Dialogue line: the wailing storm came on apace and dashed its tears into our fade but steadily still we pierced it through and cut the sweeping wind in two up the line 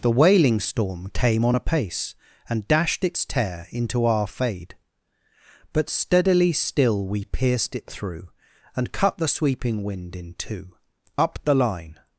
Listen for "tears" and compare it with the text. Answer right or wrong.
wrong